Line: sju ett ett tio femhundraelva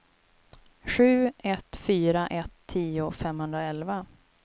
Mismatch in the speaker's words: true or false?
true